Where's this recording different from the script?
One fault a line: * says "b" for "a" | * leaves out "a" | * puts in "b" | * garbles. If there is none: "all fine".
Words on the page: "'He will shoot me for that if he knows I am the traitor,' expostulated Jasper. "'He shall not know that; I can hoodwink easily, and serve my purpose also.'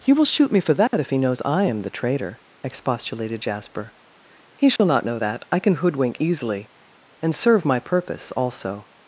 all fine